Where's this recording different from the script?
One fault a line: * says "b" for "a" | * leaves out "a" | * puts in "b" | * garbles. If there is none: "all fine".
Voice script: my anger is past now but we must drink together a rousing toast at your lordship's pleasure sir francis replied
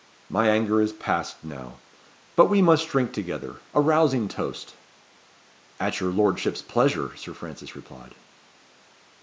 all fine